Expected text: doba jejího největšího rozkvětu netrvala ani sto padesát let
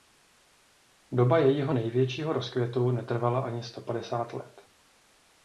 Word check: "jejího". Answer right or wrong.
right